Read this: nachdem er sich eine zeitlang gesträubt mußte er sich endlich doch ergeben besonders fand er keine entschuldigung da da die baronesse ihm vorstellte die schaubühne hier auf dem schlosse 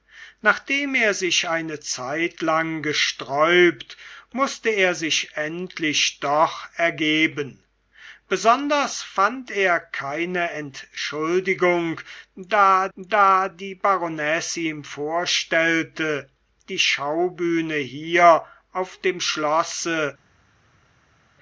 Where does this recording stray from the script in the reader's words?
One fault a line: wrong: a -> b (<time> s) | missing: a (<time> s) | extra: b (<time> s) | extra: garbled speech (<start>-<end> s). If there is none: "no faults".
no faults